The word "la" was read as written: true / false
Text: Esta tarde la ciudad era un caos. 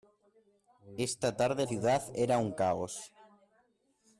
false